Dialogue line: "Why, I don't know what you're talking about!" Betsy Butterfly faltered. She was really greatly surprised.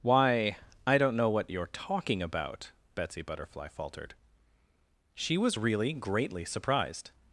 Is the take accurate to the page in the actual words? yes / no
yes